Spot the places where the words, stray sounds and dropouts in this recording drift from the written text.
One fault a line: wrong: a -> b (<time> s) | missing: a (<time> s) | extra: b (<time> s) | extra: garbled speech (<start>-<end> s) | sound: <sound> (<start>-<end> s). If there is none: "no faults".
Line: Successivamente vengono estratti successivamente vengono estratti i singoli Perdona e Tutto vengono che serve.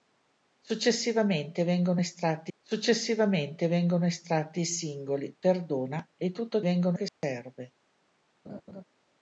sound: dropout (7.1-7.2 s)
sound: laugh (8.4-8.8 s)